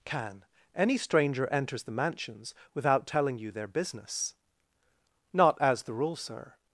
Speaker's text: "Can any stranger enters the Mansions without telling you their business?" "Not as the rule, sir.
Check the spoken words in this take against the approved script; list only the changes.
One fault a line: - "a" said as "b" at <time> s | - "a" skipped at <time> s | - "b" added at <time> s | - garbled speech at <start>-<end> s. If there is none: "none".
none